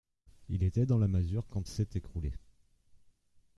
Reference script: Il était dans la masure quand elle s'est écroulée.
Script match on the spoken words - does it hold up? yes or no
no